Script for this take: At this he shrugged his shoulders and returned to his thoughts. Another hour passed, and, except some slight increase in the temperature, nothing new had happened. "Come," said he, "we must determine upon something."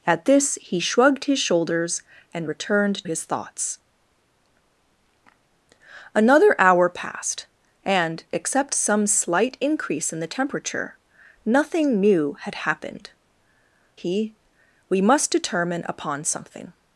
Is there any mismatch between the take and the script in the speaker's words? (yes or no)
yes